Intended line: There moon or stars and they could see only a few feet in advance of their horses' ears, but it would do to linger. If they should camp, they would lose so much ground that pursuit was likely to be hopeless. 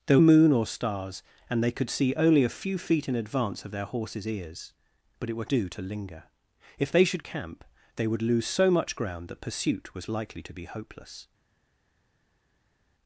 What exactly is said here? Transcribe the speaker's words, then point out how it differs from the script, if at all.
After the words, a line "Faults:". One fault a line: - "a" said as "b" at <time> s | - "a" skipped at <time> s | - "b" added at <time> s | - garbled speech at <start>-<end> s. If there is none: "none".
There moon or stars and they could see only a few feet in advance of their horses' ears, but it would do to linger. If they should camp, they would lose so much ground that pursuit was likely to be hopeless.
Faults:
none